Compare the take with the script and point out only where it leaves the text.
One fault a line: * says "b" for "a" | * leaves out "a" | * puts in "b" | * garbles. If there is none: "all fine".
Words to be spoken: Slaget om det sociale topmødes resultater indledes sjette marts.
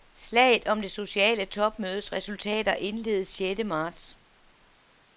all fine